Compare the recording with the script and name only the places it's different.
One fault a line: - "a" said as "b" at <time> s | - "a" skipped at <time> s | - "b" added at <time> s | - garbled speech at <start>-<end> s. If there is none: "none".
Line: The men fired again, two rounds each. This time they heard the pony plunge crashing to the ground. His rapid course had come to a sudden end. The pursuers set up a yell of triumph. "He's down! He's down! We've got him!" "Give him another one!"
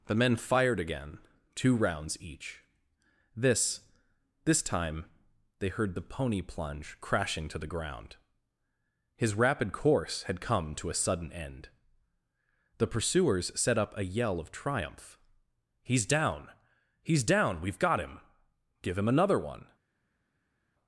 - "This" added at 4.5 s